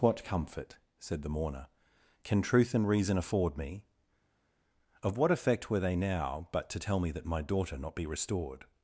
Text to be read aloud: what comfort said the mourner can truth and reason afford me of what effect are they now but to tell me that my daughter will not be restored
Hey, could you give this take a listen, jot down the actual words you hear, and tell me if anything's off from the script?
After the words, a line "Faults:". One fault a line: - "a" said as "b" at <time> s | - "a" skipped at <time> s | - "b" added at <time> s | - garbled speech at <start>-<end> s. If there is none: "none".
what comfort said the mourner can truth and reason afford me of what effect were they now but to tell me that my daughter not be restored
Faults:
- "are" said as "were" at 5.7 s
- "will" skipped at 7.8 s